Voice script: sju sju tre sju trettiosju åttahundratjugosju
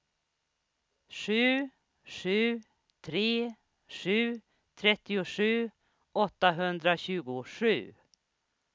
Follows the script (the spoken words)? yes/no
yes